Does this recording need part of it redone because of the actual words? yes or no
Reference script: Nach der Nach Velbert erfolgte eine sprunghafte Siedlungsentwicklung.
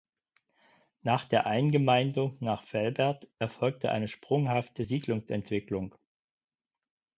yes